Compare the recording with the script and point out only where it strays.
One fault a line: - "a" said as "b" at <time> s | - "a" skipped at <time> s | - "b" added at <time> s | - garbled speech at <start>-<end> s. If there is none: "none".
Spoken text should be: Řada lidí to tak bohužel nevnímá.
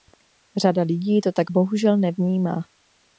none